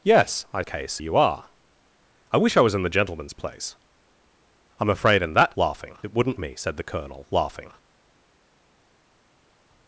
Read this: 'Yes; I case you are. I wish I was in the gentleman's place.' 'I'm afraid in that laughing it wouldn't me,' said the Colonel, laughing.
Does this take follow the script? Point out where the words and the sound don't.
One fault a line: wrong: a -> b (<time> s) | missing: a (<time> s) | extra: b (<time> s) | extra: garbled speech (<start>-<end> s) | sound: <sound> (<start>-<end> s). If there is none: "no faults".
no faults